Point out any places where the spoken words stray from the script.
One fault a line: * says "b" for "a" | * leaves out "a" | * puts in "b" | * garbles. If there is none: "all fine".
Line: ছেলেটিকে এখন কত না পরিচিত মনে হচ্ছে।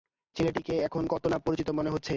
all fine